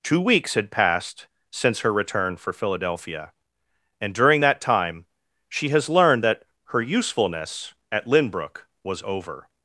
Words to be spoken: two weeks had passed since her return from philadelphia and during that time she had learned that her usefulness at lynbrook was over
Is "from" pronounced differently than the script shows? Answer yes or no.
yes